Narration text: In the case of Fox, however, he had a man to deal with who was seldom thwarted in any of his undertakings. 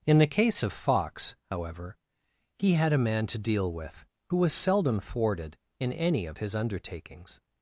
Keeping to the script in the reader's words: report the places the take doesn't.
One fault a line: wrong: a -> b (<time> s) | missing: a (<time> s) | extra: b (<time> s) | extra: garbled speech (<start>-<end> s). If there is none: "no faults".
no faults